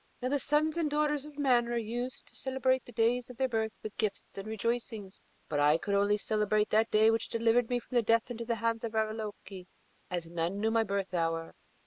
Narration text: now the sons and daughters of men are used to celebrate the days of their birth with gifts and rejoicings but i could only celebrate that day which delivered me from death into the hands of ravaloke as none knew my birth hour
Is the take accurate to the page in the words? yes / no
yes